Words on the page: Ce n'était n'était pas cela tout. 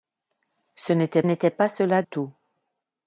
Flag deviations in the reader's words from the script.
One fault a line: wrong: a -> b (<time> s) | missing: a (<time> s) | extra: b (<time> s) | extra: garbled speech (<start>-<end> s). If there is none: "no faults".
no faults